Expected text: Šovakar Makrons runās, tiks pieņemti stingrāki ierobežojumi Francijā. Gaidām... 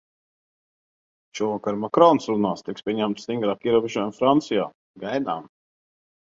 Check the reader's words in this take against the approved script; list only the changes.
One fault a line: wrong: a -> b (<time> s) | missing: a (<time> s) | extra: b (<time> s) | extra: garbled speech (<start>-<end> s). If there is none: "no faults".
no faults